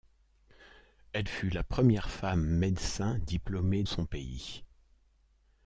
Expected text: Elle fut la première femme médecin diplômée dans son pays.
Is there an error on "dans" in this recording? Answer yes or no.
yes